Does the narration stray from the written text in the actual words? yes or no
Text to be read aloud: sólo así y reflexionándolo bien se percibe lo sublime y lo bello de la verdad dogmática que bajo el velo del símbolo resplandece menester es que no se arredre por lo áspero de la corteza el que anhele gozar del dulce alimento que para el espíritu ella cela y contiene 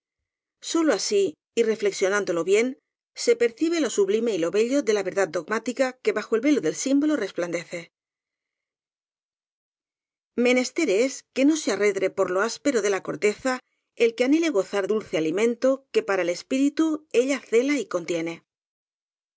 yes